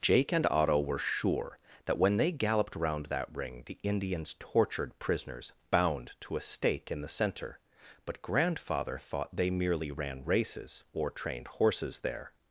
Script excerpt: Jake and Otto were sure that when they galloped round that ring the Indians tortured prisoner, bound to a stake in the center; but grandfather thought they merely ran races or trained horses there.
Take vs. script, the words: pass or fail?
fail